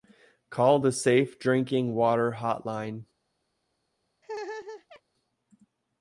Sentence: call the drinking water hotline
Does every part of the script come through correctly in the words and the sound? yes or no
no